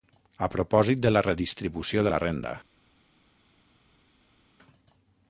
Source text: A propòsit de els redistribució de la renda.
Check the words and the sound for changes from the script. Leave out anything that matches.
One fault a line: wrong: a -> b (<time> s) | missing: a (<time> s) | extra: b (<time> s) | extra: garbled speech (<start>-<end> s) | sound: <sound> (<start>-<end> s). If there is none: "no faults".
wrong: els -> la (1.1 s)